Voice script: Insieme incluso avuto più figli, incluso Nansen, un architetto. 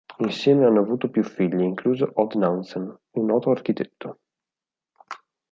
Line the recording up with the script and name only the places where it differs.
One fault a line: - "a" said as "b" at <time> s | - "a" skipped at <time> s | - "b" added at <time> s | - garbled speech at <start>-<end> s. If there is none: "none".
- "incluso" said as "hanno" at 0.7 s
- "Odd" added at 2.1 s
- "noto" added at 3.3 s